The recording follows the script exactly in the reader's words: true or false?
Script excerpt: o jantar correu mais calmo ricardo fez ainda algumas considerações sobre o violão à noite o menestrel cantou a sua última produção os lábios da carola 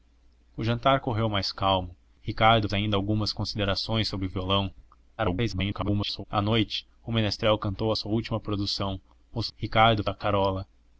false